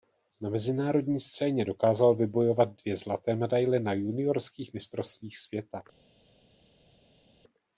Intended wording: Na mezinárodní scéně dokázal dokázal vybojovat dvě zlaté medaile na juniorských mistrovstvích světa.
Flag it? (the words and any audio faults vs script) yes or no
yes